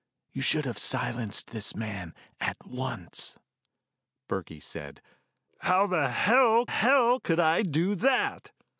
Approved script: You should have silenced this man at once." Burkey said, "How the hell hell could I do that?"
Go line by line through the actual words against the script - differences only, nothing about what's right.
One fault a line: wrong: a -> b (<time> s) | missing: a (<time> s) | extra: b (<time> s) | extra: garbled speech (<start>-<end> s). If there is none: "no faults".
no faults